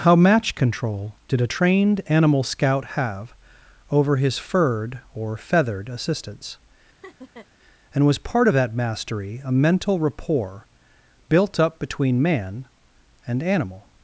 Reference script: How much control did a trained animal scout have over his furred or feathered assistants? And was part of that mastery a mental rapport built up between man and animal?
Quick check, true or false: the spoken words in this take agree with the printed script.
false